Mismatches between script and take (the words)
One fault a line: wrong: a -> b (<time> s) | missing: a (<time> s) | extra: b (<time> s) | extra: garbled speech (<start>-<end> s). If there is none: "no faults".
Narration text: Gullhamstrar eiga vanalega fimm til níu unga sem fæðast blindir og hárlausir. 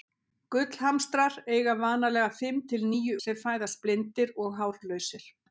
missing: unga (3.2 s)